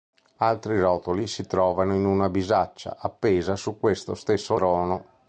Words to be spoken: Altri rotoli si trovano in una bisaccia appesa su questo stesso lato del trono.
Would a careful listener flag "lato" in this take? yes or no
yes